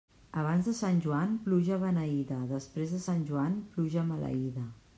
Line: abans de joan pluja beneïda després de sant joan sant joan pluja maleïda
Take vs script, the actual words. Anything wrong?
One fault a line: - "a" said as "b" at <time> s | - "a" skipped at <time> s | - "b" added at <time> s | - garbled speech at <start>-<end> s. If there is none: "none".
- "sant" added at 0.8 s
- "sant joan" skipped at 3.6 s